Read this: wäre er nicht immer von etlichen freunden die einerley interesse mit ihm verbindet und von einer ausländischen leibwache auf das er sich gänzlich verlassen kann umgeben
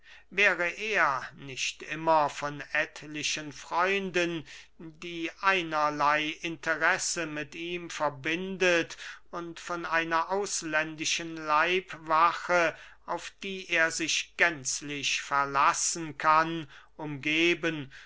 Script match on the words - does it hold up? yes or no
no